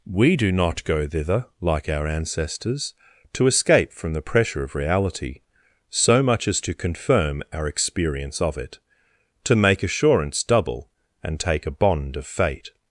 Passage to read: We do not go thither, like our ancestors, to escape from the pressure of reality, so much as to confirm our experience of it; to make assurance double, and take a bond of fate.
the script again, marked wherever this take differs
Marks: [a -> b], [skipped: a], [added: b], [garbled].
We do not go thither, like our ancestors, to escape from the pressure of reality, so much as to confirm our experience of it; to make assurance double, and take a bond of fate.